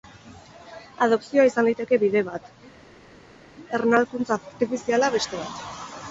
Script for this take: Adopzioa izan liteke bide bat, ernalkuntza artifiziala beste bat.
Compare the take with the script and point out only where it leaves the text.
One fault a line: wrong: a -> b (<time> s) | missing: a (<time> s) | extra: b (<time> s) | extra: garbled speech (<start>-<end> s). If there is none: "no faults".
no faults